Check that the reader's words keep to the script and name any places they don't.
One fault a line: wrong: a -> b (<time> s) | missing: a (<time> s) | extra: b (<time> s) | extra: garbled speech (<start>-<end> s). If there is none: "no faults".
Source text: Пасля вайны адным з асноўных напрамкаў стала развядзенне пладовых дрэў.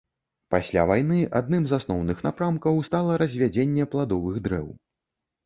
no faults